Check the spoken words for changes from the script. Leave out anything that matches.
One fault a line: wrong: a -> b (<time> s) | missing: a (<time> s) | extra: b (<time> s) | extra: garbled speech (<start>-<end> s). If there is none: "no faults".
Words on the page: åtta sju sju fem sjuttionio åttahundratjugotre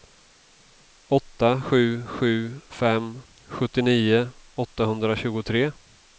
no faults